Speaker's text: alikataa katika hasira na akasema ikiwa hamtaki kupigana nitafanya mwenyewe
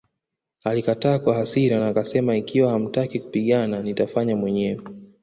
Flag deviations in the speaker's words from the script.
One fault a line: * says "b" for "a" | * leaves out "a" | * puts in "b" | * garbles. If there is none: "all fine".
* says "kwa" for "katika"